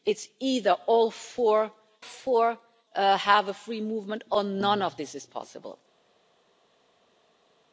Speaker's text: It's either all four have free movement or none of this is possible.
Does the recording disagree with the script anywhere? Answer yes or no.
yes